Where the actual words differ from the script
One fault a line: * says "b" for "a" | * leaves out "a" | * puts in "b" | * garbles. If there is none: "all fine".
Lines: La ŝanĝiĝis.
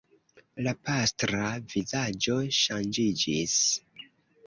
* puts in "pastra vizaĝo"